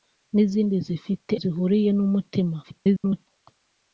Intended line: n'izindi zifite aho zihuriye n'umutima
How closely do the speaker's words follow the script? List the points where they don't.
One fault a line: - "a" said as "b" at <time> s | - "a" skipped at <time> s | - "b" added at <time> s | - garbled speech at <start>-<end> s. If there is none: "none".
- "aho" skipped at 1.3 s
- garbled speech at 2.6-3.3 s